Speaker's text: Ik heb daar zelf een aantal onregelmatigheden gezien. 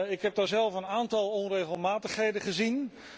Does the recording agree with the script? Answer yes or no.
yes